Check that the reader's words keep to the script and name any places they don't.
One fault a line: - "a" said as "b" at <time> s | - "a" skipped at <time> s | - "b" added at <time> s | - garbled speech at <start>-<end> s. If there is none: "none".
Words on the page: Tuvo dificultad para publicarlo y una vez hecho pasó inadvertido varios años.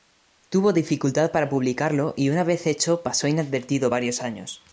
none